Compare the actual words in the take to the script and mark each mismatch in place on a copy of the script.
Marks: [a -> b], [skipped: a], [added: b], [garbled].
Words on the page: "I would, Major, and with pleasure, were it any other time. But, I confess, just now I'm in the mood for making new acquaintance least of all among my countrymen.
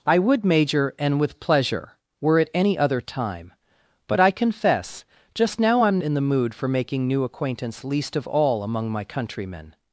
"I would, Major, and with pleasure, were it any other time. But, I confess, just now I'm in the mood for making new acquaintance least of all among my countrymen.